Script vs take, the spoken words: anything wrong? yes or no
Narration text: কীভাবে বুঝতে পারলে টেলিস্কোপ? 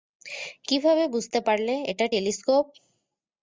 yes